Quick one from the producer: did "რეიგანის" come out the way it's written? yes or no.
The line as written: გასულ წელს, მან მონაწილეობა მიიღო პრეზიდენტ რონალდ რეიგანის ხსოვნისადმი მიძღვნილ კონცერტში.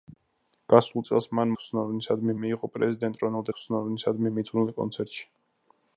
no